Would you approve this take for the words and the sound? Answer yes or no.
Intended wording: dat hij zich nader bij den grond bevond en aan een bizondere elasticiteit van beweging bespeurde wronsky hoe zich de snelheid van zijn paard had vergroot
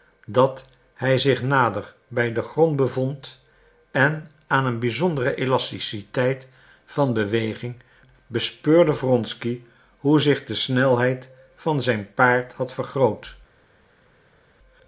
yes